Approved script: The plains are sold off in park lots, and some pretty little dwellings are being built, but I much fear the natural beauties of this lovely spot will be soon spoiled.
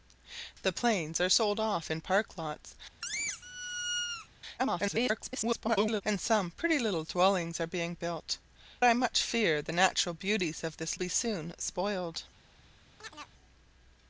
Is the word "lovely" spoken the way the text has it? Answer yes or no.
no